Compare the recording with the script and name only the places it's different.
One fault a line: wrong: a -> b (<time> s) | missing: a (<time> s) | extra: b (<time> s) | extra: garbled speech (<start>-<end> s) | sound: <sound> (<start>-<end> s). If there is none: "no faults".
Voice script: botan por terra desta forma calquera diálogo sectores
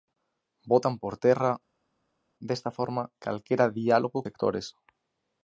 no faults